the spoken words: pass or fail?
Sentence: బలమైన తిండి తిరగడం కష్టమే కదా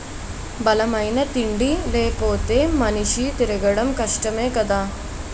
fail